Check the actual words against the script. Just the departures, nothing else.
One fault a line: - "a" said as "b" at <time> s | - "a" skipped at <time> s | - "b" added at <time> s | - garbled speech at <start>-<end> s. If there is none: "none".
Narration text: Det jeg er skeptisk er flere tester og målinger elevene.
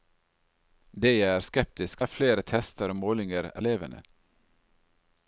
none